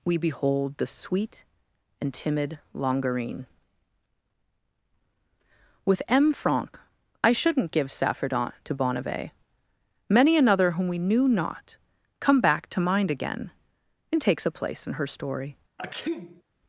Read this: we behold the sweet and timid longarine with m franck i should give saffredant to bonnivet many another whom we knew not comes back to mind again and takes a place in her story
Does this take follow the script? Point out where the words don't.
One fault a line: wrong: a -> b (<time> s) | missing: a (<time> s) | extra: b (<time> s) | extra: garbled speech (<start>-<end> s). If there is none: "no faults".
wrong: should -> shouldn't (7.3 s)
wrong: comes -> come (12.2 s)